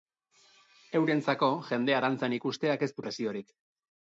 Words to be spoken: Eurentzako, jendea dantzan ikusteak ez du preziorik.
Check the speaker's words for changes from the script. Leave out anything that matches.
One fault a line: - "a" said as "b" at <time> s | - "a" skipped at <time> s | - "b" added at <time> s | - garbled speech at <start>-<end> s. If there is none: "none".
none